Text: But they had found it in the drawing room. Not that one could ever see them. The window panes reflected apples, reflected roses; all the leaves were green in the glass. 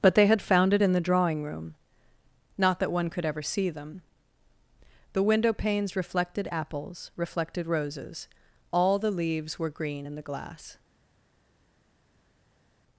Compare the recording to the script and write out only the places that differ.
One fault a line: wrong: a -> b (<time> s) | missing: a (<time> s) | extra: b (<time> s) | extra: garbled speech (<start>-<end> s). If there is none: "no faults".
no faults